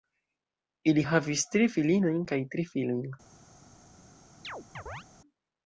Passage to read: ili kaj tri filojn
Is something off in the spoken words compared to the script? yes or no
yes